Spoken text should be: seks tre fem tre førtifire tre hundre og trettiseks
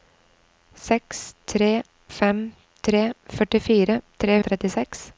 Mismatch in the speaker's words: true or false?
true